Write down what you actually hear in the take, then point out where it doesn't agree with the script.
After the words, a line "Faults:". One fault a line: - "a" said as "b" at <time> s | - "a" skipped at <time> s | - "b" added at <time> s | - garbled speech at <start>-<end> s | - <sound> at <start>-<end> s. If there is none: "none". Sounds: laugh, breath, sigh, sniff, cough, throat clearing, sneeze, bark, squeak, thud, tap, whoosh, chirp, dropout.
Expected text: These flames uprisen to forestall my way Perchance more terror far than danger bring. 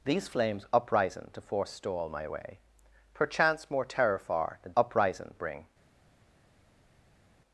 These flames uprisen to forestall my way Perchance more terror far than uprisen bring.
Faults:
- "danger" said as "uprisen" at 4.8 s